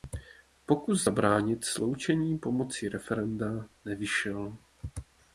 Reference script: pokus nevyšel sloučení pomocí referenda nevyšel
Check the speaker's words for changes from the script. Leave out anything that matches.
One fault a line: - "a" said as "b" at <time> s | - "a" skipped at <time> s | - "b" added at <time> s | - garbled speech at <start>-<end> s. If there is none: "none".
- "nevyšel" said as "zabránit" at 1.0 s